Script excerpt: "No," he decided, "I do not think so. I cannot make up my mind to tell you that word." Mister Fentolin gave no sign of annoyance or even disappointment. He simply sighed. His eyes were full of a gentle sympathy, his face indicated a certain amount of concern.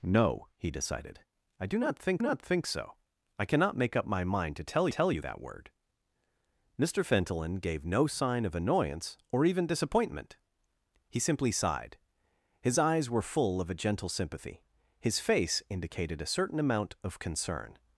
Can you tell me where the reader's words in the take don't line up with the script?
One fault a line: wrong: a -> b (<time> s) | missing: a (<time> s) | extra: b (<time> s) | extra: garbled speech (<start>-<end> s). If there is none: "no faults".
extra: not think (2.2 s)
extra: tell (4.9 s)